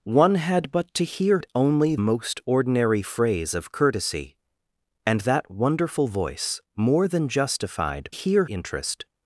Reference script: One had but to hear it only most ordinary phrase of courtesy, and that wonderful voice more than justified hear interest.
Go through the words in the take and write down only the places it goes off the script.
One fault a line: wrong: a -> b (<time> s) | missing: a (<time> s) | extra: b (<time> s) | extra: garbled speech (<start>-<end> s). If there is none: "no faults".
no faults